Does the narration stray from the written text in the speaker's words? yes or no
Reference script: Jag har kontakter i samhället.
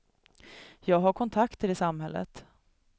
no